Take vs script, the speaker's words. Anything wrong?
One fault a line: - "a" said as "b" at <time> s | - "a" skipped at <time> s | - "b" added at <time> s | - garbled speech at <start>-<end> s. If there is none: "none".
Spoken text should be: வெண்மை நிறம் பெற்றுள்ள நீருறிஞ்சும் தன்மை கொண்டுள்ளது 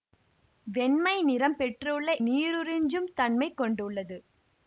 none